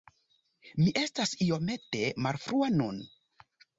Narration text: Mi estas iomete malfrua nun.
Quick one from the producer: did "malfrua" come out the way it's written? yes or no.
yes